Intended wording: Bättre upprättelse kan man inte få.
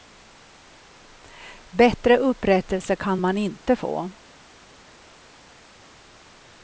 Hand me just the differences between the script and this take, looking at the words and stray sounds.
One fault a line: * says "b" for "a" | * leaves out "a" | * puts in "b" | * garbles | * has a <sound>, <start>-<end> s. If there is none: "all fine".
all fine